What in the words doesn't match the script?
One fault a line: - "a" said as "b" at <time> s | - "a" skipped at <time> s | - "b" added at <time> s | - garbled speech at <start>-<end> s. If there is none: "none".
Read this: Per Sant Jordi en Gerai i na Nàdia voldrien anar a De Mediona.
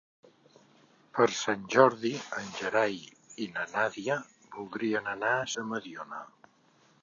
none